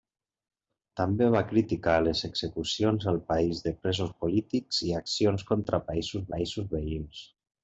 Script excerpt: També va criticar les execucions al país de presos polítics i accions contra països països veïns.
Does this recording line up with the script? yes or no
yes